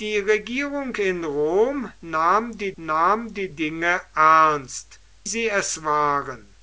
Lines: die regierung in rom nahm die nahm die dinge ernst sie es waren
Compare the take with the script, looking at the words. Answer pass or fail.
pass